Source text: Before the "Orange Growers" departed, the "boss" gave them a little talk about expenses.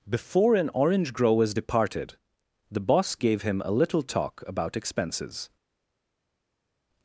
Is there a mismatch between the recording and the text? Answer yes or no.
yes